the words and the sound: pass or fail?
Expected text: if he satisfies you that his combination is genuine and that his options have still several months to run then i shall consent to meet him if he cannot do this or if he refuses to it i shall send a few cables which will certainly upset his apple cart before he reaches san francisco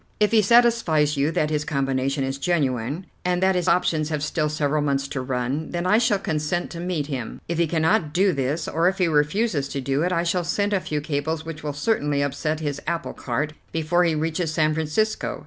fail